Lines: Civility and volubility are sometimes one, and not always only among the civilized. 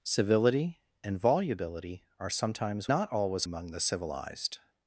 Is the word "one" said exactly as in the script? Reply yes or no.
no